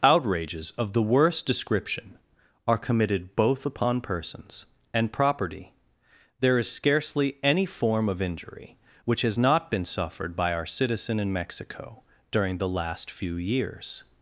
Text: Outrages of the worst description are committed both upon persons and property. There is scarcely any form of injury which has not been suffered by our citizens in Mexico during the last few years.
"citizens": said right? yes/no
no